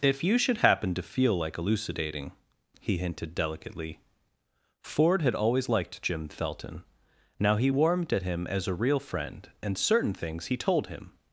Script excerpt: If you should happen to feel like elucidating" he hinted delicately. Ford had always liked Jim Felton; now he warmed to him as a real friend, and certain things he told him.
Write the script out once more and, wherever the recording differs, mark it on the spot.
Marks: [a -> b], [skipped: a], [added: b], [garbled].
If you should happen to feel like elucidating" he hinted delicately. Ford had always liked Jim Felton; now he warmed [to -> at] him as a real friend, and certain things he told him.